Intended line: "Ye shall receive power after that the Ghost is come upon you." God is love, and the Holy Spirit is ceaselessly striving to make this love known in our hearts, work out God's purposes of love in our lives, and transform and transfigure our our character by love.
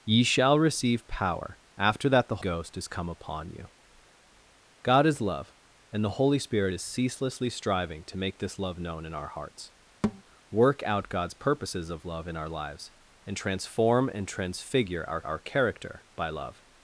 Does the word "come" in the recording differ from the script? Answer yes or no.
no